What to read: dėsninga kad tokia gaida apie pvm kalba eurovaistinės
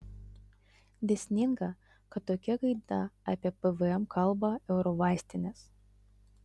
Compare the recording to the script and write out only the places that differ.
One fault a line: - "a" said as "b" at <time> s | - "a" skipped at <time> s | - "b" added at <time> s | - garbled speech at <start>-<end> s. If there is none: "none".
none